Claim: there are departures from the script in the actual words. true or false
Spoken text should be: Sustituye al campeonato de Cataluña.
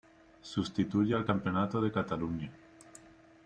false